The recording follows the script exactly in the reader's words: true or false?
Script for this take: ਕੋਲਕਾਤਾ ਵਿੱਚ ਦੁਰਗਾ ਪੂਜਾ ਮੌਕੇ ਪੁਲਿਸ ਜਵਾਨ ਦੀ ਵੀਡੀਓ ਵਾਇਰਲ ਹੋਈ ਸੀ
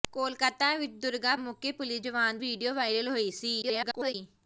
false